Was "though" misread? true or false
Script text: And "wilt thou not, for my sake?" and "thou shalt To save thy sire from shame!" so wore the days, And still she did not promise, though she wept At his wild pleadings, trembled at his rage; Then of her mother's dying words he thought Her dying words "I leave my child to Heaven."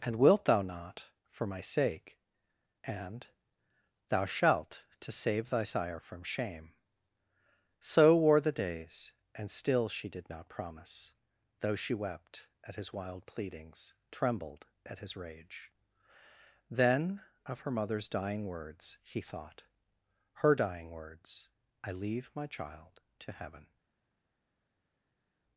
false